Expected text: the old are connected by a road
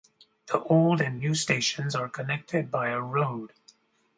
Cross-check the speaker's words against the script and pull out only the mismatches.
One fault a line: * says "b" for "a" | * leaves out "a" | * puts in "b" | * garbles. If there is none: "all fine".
* puts in "and new stations"